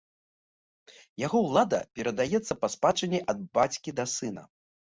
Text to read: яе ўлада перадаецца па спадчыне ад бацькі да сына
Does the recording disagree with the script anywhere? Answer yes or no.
yes